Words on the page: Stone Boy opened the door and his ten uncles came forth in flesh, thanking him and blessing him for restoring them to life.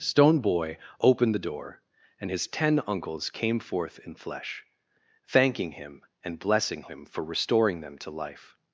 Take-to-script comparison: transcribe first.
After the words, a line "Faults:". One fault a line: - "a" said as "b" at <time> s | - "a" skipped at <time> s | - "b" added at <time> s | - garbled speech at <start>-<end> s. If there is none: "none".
Stone Boy opened the door and his ten uncles came forth in flesh, thanking him and blessing him for restoring them to life.
Faults:
none